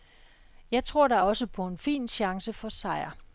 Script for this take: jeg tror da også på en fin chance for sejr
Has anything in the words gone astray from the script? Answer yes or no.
no